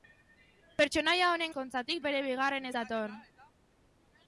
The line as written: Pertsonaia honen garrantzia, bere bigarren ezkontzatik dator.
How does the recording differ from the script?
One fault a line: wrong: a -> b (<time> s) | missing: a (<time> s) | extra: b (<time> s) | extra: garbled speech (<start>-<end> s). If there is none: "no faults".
wrong: garrantzia -> ezkontzatik (1.5 s)
missing: ezkontzatik (2.7 s)